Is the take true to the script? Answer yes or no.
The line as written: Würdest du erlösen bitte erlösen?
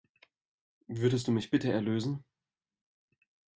no